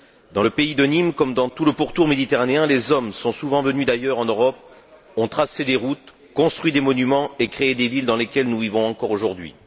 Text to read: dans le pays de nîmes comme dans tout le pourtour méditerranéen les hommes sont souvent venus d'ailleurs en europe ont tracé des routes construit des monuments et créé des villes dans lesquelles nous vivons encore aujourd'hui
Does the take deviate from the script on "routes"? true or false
false